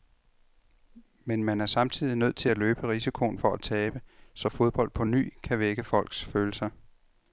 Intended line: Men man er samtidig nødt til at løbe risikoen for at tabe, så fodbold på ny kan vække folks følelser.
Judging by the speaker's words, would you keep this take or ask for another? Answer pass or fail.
pass